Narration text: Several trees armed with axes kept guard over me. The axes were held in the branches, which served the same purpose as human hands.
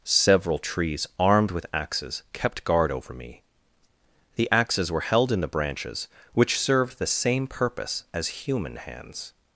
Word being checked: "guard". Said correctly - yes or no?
yes